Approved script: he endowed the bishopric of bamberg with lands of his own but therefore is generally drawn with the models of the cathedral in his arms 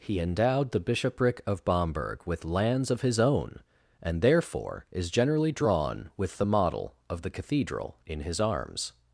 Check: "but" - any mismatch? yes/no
yes